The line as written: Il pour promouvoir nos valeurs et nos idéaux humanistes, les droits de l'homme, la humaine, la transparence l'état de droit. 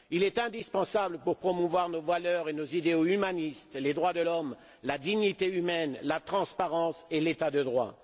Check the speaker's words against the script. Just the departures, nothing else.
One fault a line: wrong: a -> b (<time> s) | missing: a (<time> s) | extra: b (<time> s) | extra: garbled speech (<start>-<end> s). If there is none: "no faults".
extra: est indispensable (0.2 s)
extra: dignité (5.0 s)
extra: et (7.1 s)